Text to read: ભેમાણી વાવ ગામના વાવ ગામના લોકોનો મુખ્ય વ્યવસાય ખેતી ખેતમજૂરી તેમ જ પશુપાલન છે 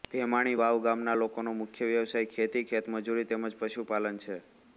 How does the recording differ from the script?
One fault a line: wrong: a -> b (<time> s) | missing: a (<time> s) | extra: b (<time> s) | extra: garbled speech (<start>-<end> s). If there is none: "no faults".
missing: વાવ ગામના (1.1 s)